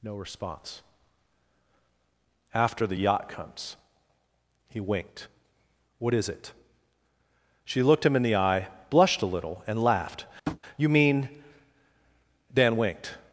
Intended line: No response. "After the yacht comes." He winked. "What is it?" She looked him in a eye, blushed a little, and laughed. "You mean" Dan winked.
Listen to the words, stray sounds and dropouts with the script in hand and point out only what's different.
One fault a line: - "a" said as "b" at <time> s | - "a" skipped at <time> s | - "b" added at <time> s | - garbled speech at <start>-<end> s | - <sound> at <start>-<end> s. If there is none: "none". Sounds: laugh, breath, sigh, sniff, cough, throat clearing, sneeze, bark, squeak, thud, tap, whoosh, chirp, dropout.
- "a" said as "the" at 8.2 s
- tap at 10.5-10.6 s